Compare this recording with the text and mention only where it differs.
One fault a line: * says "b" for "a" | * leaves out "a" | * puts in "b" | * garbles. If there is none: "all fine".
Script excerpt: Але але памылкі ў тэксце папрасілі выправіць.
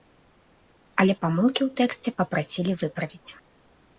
* leaves out "але"